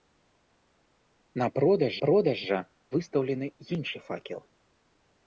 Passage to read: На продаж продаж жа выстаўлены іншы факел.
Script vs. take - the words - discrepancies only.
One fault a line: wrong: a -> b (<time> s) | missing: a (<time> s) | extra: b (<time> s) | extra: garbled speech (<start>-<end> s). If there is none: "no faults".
no faults